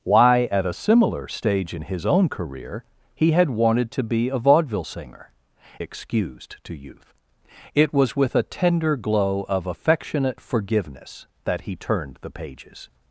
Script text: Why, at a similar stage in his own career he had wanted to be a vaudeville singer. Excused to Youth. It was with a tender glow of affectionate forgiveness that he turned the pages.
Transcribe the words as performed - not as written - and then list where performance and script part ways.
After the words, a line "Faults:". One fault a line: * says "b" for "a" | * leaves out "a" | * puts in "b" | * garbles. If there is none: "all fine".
Why, at a similar stage in his own career he had wanted to be a vaudeville singer. Excused to Youth. It was with a tender glow of affectionate forgiveness that he turned the pages.
Faults:
all fine